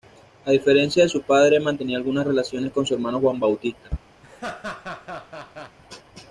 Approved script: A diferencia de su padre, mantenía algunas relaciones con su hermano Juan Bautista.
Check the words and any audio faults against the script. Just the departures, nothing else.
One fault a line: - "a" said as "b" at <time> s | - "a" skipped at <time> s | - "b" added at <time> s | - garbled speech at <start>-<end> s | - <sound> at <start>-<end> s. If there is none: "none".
- laugh at 4.2-5.8 s